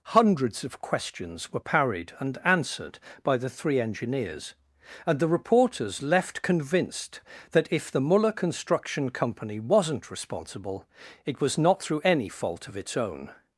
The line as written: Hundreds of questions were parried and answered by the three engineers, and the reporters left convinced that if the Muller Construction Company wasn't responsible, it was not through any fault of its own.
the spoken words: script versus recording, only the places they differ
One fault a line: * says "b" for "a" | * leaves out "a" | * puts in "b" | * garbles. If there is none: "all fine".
all fine